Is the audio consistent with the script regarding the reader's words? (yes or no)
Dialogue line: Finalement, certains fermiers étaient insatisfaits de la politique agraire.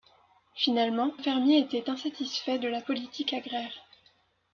no